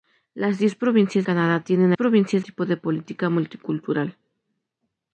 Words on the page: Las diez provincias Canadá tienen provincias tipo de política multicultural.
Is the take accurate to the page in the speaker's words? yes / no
yes